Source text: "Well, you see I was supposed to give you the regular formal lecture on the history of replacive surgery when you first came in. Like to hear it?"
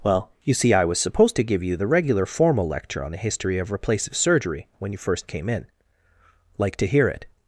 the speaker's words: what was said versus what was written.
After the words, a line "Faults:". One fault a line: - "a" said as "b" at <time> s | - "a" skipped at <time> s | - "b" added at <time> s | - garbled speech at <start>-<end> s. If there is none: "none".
"Well, you see I was supposed to give you the regular formal lecture on the history of replacive surgery when you first came in. Like to hear it?"
Faults:
none